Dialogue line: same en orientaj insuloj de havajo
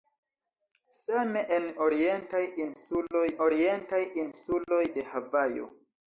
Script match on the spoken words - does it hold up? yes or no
no